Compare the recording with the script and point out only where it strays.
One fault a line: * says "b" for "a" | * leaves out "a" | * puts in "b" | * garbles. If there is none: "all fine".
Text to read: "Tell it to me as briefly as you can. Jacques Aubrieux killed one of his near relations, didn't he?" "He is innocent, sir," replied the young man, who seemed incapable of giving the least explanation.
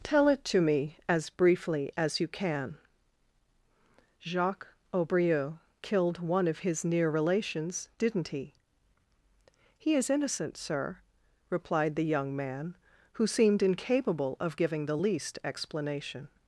all fine